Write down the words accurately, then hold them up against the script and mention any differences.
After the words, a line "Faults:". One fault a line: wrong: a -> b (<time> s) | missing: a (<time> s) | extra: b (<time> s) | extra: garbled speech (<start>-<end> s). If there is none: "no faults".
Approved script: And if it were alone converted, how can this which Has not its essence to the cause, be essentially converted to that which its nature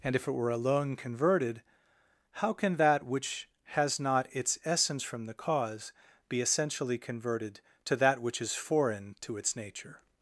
And if it were alone converted, how can that which Has not its essence from the cause, be essentially converted to that which is foreign to its nature
Faults:
wrong: this -> that (2.8 s)
wrong: to -> from (5.0 s)
extra: is foreign to (8.4 s)